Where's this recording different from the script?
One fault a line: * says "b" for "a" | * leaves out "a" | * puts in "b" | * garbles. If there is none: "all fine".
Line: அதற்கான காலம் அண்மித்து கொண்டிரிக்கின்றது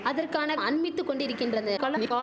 * leaves out "காலம்"
* garbles